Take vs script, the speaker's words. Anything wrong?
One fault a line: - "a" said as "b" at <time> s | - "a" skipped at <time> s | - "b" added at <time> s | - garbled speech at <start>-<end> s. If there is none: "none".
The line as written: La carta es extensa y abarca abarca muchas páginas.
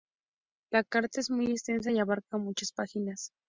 - "muy" added at 1.3 s
- "abarca" skipped at 2.4 s